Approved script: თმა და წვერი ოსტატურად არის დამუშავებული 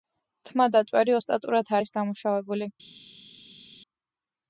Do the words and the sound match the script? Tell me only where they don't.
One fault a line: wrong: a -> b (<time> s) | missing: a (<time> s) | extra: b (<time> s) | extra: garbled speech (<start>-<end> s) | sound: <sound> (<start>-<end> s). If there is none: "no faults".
no faults